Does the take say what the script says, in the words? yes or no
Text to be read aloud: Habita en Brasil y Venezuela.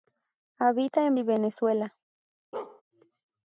no